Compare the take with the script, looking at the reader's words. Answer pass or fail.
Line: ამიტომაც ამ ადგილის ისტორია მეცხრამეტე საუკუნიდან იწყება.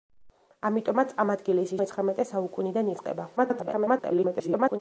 fail